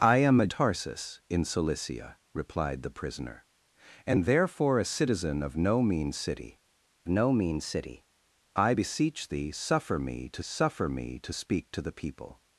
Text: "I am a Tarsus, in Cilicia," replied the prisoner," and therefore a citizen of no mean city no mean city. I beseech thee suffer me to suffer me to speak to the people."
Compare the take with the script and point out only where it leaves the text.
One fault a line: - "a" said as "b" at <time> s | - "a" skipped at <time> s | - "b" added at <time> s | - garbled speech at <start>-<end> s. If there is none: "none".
none